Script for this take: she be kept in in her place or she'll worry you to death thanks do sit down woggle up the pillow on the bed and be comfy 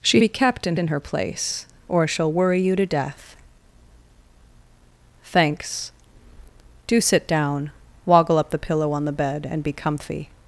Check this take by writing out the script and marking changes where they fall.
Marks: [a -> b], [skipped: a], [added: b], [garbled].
she be kept in in her place or she'll worry you to death thanks do sit down woggle up the pillow on the bed and be comfy